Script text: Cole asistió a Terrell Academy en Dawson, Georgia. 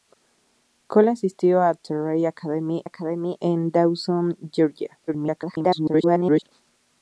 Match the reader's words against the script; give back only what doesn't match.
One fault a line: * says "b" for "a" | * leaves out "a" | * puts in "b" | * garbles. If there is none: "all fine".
* puts in "Academy"
* garbles